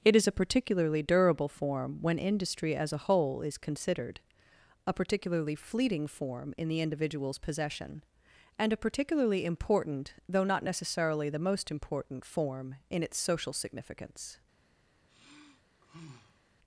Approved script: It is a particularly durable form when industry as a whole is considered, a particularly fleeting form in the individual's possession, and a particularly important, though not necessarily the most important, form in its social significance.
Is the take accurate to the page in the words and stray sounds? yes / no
no